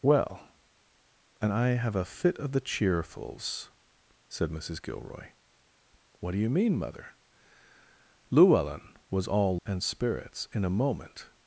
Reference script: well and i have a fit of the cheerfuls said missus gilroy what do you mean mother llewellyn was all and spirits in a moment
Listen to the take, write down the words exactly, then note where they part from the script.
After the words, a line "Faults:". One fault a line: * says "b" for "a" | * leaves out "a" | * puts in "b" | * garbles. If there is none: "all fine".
well and i have a fit of the cheerfuls said missus gilroy what do you mean mother llewellyn was all and spirits in a moment
Faults:
all fine